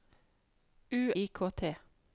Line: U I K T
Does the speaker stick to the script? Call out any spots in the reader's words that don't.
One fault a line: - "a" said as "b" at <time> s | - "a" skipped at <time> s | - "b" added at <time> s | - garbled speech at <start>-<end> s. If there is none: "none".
none